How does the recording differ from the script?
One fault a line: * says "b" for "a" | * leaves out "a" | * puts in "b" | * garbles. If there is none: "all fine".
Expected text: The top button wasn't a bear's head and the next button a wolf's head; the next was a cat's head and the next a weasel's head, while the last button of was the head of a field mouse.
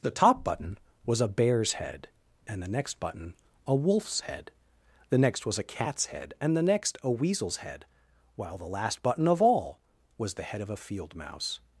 * says "was" for "wasn't"
* puts in "all"